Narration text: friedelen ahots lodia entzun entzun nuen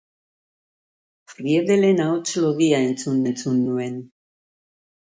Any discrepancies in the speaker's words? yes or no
no